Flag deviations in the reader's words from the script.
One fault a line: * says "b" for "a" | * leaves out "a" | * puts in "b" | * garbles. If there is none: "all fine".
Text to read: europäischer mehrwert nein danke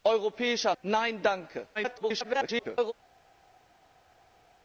* leaves out "mehrwert"
* garbles